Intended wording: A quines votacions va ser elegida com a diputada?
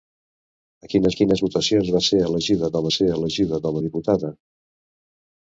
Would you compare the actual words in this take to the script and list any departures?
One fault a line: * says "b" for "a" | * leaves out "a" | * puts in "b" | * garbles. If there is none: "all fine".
* puts in "quines"
* puts in "ser elegida com"